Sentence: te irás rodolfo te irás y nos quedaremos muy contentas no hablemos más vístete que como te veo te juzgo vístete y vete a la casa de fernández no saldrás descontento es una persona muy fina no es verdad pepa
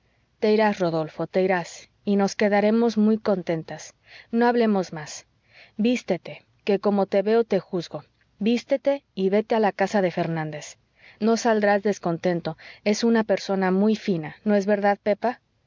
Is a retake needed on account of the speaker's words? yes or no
no